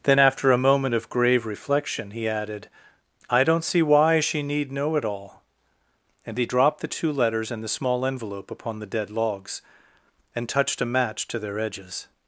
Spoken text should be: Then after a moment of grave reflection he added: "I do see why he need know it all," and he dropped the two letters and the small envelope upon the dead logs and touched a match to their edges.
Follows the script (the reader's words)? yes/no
no